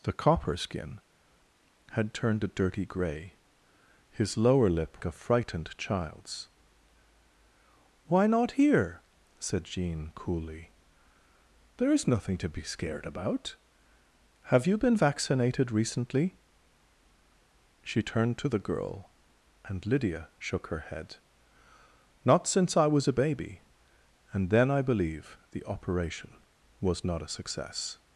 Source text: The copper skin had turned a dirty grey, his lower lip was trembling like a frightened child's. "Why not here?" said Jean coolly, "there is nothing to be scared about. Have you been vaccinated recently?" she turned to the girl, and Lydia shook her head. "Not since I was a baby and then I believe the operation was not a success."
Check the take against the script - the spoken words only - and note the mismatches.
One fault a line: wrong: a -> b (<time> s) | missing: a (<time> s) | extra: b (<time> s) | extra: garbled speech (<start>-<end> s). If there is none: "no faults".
missing: was trembling like (5.0 s)